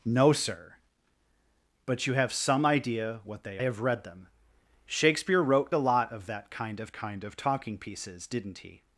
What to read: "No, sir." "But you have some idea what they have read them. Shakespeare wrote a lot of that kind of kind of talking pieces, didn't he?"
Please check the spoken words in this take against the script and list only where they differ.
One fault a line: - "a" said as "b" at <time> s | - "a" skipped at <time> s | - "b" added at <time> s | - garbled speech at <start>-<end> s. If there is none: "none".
none